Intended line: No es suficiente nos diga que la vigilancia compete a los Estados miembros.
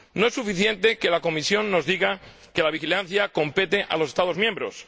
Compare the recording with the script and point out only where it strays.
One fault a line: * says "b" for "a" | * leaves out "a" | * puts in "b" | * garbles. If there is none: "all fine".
* puts in "que la Comisión"